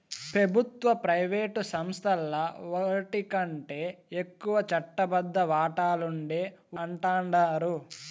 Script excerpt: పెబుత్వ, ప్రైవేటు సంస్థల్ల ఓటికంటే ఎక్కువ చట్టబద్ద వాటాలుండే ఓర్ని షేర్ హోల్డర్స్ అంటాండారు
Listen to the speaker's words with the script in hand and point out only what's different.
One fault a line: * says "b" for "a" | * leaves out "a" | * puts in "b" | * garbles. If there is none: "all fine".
* leaves out "ఓర్ని షేర్ హోల్డర్స్"